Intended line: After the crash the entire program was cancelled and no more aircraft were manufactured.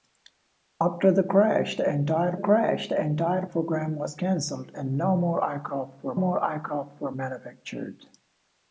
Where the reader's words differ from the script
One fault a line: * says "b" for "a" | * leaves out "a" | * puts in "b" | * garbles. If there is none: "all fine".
* puts in "crash the entire"
* puts in "more aircraft were"